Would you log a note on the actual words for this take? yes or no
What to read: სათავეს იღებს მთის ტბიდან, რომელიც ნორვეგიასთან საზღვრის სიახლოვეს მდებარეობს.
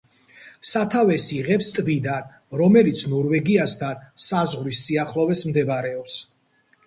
yes